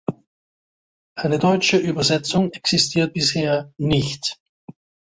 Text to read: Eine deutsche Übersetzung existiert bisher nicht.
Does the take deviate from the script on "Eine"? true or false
false